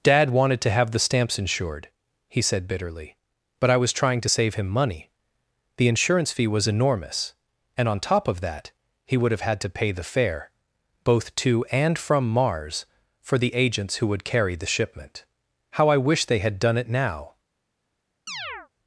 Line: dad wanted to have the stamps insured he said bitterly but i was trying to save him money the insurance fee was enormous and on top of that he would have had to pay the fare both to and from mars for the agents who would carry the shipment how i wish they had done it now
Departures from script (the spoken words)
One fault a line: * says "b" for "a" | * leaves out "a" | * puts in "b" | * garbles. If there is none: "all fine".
all fine